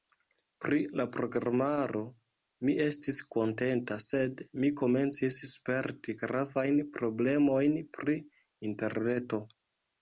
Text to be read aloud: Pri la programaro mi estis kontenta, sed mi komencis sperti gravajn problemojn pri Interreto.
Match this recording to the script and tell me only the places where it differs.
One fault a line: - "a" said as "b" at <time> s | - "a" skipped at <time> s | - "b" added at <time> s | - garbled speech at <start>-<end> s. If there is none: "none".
none